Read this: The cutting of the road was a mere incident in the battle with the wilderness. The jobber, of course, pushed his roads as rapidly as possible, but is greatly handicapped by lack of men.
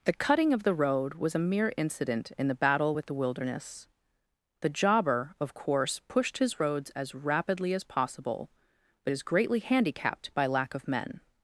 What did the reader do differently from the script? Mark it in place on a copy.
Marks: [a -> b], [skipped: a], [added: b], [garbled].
The cutting of the road was a mere incident in the battle with the wilderness. The jobber, of course, pushed his roads as rapidly as possible, but is greatly handicapped by lack of men.